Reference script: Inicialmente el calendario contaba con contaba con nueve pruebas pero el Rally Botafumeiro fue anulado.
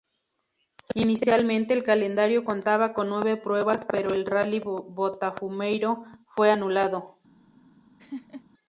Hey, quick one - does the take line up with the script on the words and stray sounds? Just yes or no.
no